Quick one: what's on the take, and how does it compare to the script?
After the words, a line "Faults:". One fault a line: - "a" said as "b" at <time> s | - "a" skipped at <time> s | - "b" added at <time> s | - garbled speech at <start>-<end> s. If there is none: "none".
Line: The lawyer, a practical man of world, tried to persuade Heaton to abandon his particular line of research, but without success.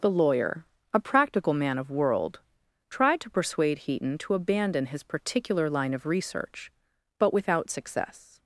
The lawyer, a practical man of world, tried to persuade Heaton to abandon his particular line of research, but without success.
Faults:
none